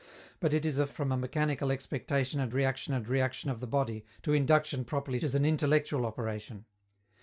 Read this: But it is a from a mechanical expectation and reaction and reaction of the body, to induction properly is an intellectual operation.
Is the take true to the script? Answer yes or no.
yes